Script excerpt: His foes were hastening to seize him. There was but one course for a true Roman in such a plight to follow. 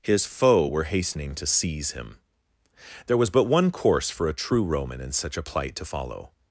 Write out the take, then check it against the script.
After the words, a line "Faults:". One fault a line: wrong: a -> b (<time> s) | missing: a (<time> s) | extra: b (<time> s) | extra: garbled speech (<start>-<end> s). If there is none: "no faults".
His foe were hastening to seize him. There was but one course for a true Roman in such a plight to follow.
Faults:
wrong: foes -> foe (0.2 s)